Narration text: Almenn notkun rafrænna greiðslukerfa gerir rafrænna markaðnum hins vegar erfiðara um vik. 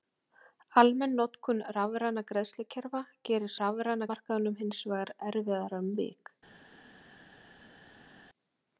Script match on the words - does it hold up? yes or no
yes